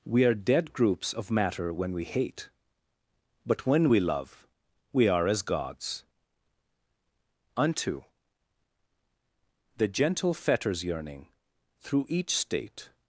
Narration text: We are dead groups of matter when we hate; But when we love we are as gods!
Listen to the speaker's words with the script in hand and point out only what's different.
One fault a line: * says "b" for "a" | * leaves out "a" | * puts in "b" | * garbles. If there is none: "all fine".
* puts in "Unto The gentle fetters yearning through each state"